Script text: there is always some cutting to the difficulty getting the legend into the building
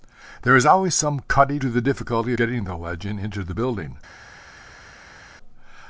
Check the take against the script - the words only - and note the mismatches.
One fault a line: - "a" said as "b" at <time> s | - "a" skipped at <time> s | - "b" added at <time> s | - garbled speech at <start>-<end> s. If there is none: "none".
none